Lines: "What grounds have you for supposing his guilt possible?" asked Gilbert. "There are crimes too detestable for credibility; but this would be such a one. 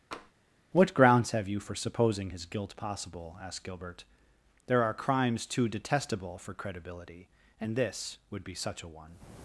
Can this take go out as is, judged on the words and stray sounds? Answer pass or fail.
fail